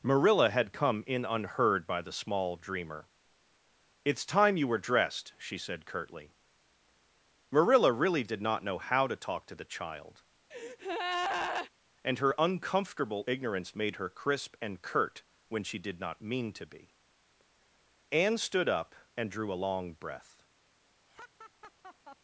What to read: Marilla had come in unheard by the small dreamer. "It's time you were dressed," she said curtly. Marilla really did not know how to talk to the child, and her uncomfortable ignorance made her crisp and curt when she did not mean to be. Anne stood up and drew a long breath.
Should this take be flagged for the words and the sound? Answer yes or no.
yes